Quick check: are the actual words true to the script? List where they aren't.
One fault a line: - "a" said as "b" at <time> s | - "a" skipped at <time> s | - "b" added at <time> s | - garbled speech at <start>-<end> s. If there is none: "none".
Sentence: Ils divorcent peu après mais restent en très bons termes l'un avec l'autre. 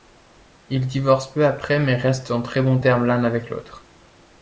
none